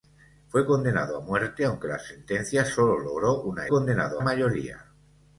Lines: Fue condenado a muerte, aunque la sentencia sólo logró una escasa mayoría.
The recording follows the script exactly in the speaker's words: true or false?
false